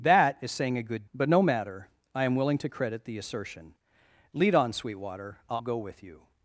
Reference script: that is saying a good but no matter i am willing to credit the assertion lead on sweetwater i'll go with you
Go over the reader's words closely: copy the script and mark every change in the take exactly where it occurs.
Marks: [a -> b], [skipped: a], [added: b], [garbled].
that is saying a good but no matter i am willing to credit the assertion lead on sweetwater i'll go with you